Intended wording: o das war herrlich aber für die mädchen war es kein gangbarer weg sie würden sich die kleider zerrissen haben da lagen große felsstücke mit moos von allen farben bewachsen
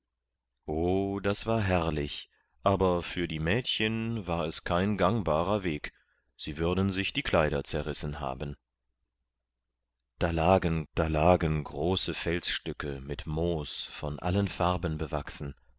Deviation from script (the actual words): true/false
true